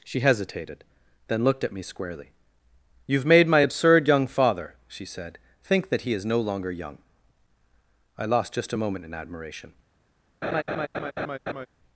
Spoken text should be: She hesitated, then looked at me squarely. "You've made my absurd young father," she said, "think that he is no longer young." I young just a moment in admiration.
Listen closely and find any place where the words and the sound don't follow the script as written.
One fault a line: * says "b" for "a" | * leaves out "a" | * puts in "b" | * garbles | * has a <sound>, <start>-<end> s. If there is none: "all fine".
* says "lost" for "young"
* has a laugh, 10.4-11.7 s